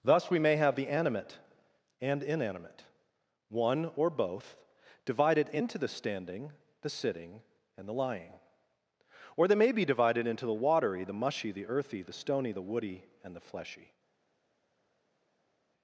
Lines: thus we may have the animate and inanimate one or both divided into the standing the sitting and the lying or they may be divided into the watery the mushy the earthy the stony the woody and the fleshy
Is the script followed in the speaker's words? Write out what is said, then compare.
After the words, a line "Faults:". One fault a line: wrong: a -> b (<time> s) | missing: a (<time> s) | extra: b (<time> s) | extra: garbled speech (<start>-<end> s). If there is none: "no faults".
thus we may have the animate and inanimate one or both divided into the standing the sitting and the lying or they may be divided into the watery the mushy the earthy the stony the woody and the fleshy
Faults:
no faults